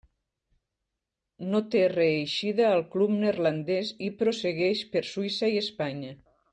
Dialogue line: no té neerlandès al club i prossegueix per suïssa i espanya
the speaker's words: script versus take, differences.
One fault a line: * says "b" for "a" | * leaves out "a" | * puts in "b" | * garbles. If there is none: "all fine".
* says "reeixida" for "neerlandès"
* puts in "neerlandès"